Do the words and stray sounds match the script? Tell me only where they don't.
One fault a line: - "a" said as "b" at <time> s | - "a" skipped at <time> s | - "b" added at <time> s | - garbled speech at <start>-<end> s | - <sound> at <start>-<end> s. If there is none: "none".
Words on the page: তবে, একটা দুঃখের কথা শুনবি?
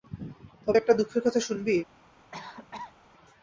- cough at 2.3-3.0 s